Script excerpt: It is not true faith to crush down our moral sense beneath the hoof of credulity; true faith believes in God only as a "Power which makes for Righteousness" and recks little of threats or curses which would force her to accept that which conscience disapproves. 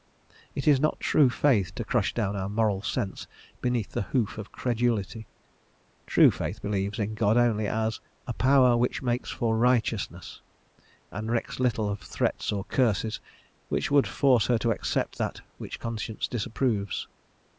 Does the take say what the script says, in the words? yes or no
yes